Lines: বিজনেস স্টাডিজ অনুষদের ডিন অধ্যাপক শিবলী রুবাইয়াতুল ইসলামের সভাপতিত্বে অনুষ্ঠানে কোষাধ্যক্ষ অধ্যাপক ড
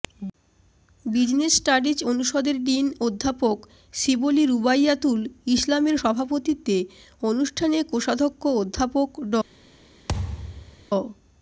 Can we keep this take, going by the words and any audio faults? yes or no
no